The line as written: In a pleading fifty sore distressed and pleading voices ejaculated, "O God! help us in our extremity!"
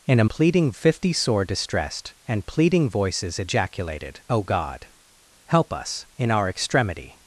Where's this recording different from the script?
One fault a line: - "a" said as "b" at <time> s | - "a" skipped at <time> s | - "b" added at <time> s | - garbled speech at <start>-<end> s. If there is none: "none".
none